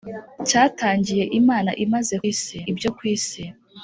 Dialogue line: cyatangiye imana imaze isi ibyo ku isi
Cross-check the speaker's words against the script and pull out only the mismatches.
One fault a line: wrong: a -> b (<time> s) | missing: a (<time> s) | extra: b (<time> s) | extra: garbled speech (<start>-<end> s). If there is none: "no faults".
no faults